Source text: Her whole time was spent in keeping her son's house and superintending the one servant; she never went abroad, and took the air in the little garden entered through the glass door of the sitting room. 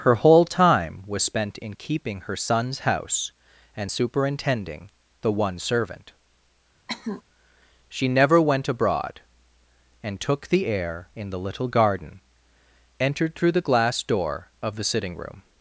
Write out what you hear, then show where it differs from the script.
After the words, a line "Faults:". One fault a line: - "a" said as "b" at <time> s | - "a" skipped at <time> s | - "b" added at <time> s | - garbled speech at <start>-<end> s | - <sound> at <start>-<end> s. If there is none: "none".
Her whole time was spent in keeping her son's house and superintending the one servant; she never went abroad, and took the air in the little garden entered through the glass door of the sitting room.
Faults:
- cough at 6.9-7.2 s